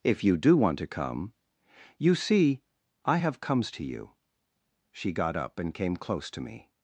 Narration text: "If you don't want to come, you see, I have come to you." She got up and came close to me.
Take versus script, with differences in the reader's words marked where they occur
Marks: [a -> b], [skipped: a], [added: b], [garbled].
"If you [don't -> do] want to come, you see, I have [come -> comes] to you." She got up and came close to me.